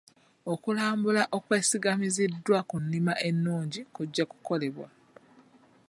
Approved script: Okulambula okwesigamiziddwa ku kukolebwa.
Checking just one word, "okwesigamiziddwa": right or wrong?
right